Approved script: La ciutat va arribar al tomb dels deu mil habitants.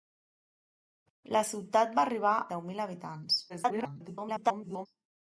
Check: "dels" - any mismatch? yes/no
yes